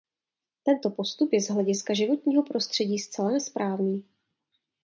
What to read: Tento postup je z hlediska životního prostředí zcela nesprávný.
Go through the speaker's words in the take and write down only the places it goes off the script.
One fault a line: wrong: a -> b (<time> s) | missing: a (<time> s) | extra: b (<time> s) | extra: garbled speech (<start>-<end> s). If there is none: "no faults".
no faults